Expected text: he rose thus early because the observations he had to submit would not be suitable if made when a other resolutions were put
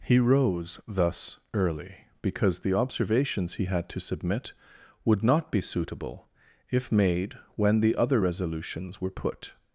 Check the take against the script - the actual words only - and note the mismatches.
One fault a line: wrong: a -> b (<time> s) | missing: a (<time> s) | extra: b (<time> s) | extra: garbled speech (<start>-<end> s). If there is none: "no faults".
wrong: a -> the (7.8 s)